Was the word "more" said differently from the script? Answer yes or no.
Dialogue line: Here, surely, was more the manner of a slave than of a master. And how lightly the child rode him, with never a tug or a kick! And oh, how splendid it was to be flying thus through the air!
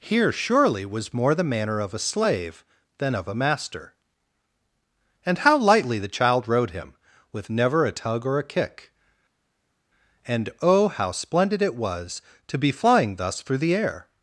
no